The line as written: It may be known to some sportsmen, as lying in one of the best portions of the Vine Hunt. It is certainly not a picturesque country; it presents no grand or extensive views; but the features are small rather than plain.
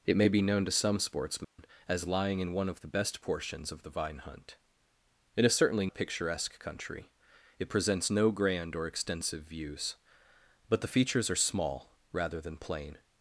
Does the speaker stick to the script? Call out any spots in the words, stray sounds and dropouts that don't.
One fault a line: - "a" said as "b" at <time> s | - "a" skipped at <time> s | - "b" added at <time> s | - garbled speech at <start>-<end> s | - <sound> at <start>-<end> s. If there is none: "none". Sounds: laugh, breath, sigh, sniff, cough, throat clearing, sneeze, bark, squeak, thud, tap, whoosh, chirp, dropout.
- dropout at 1.4-1.6 s
- "not" skipped at 5.9 s